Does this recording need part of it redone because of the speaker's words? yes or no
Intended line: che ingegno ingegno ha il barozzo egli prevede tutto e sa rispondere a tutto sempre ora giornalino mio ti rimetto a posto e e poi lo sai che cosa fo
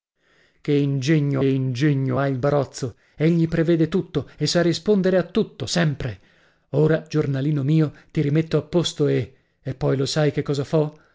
no